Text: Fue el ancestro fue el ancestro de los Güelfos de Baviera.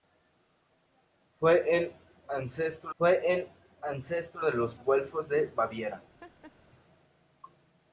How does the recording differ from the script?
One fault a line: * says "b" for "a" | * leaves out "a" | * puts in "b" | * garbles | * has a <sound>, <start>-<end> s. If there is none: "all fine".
* has a laugh, 6.2-6.5 s